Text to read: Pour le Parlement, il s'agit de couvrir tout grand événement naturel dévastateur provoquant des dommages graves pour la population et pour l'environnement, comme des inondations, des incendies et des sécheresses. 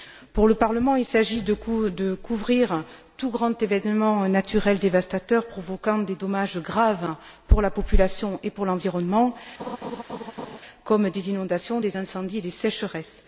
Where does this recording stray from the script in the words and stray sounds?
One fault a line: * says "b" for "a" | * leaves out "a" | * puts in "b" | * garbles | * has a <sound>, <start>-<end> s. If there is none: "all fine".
* has a laugh, 9.6-10.6 s